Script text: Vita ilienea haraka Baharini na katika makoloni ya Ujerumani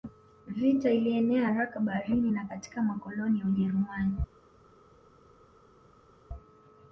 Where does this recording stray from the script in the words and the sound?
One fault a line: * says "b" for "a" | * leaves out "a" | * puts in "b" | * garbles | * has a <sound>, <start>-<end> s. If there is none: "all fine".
all fine